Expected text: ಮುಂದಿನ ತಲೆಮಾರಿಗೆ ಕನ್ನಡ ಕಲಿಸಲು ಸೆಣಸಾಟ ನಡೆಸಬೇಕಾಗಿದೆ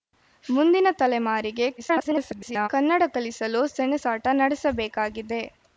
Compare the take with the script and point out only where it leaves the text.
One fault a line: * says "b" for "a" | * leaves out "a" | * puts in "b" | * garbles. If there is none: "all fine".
* garbles